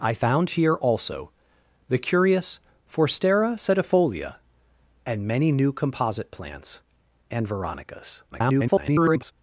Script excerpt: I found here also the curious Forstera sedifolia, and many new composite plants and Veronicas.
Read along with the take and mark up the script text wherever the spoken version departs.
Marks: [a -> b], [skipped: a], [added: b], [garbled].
I found here also the curious Forstera sedifolia, and many new composite plants and Veronicas. [garbled]